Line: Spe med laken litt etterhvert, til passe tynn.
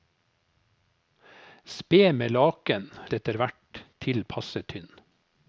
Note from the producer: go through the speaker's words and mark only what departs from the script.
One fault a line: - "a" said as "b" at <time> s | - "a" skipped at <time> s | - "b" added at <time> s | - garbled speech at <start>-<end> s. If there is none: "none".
- "litt" skipped at 2.9 s